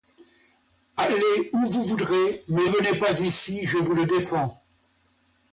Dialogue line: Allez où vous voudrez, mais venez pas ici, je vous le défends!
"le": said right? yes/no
yes